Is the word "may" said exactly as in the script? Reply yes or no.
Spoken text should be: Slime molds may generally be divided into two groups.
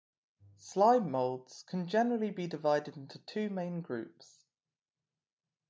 no